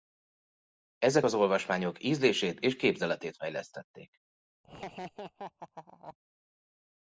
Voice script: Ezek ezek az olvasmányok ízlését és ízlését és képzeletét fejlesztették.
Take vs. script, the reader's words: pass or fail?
fail